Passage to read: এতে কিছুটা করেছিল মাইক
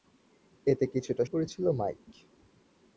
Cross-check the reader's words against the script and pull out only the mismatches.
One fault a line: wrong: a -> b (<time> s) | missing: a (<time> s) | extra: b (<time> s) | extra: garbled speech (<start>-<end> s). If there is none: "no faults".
no faults